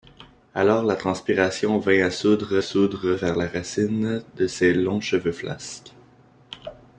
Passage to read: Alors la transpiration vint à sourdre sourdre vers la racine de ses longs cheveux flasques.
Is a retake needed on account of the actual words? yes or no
no